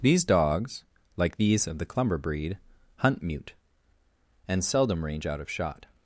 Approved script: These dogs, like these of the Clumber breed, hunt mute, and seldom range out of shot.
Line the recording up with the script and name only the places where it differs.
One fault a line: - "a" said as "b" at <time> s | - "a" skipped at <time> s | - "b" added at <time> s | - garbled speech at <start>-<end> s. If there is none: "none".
none